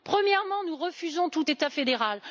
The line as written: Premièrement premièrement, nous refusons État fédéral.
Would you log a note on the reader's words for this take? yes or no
yes